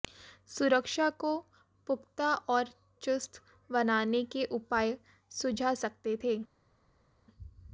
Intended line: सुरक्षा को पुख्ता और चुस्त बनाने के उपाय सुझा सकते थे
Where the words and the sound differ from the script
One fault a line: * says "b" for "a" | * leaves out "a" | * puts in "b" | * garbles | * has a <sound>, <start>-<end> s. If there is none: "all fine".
all fine